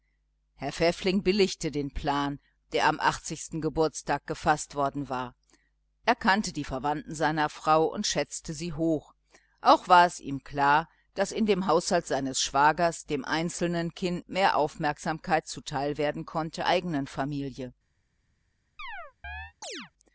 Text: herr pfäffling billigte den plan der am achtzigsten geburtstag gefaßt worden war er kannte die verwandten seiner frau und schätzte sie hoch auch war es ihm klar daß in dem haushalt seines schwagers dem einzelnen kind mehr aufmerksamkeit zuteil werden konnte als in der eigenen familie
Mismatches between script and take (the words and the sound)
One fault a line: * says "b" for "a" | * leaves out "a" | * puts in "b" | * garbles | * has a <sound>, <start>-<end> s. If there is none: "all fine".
* leaves out "als in der"
* has a chirp, 18.8-19.9 s